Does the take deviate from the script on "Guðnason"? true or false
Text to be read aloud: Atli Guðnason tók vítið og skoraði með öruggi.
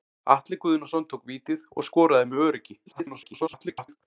false